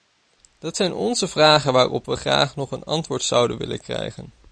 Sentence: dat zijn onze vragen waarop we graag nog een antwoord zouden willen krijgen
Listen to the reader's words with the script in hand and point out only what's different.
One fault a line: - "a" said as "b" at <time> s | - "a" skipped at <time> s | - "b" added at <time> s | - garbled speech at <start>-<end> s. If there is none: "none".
none